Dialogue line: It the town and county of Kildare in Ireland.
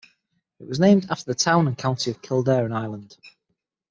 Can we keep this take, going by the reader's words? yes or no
no